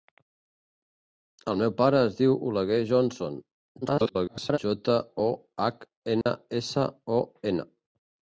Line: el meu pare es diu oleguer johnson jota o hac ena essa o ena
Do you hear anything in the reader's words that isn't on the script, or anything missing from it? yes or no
yes